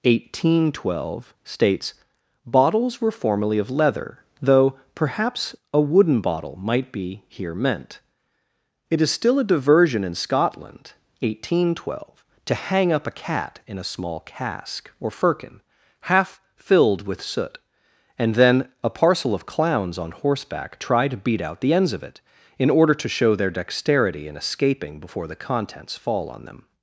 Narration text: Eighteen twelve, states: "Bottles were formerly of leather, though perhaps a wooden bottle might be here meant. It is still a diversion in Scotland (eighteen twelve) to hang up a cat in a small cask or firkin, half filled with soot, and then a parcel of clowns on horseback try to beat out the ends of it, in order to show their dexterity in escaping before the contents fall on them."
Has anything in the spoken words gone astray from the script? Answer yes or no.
no